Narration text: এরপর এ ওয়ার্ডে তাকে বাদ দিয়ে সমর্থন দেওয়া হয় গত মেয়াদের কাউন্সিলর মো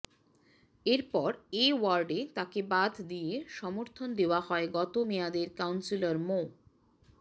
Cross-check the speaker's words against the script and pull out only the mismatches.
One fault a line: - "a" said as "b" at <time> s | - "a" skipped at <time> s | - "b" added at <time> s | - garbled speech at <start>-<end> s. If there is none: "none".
none